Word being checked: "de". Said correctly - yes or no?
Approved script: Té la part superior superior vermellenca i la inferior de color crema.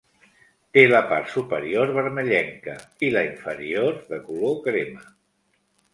yes